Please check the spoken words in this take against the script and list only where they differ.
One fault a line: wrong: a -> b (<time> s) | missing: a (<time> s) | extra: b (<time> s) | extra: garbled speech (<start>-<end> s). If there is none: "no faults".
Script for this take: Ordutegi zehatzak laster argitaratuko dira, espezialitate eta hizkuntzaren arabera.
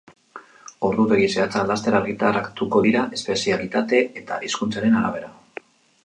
no faults